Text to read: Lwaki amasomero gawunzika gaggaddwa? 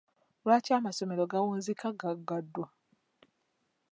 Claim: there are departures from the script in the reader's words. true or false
false